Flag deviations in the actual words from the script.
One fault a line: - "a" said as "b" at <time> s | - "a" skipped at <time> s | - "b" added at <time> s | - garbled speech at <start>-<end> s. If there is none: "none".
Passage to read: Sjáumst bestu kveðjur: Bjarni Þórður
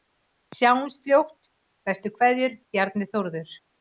- "fljótt" added at 1.0 s